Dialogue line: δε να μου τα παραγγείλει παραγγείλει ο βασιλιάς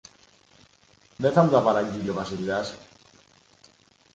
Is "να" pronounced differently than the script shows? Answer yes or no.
yes